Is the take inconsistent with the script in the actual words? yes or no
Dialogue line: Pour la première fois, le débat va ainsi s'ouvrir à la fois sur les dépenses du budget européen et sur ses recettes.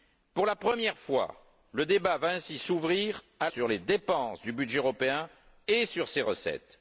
yes